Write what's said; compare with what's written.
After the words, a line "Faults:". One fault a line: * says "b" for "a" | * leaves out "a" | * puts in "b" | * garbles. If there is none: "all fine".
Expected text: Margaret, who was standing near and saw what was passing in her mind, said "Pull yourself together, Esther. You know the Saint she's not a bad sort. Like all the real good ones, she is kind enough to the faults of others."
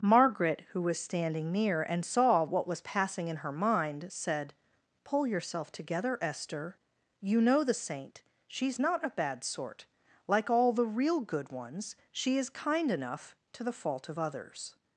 Margaret, who was standing near and saw what was passing in her mind, said "Pull yourself together, Esther. You know the Saint she's not a bad sort. Like all the real good ones, she is kind enough to the fault of others."
Faults:
* says "fault" for "faults"